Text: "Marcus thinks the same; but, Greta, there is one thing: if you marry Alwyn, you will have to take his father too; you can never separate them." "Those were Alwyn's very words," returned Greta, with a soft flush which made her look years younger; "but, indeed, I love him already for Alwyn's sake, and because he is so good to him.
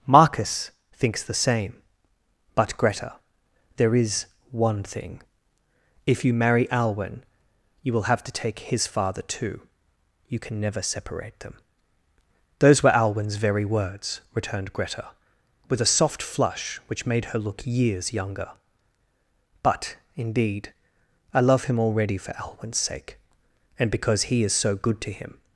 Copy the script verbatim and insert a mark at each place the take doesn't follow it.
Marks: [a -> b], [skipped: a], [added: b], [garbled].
"Marcus thinks the same; but, Greta, there is one thing: if you marry Alwyn, you will have to take his father too; you can never separate them." "Those were Alwyn's very words," returned Greta, with a soft flush which made her look years younger; "but, indeed, I love him already for Alwyn's sake, and because he is so good to him.